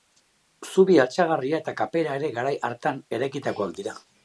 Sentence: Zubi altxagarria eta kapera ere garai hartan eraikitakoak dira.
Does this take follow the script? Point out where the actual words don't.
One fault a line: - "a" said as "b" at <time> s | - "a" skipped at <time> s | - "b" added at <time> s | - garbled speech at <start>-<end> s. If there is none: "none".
none